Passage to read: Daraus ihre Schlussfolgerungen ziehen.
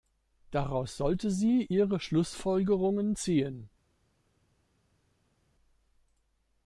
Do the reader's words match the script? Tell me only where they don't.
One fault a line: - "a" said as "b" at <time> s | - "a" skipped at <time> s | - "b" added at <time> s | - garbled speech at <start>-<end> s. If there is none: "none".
- "sollte sie" added at 1.0 s